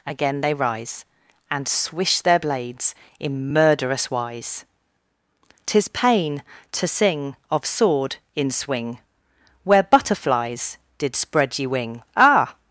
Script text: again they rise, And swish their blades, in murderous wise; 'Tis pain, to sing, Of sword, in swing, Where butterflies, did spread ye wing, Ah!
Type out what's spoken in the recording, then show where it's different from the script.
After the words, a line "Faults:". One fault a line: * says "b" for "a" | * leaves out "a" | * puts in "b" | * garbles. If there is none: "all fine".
again they rise, And swish their blades, in murderous wise; 'Tis pain, to sing, Of sword, in swing, Where butterflies, did spread ye wing, Ah!
Faults:
all fine